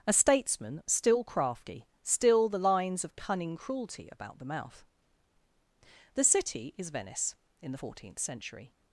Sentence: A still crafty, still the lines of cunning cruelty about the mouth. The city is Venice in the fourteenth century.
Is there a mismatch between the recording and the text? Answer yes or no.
yes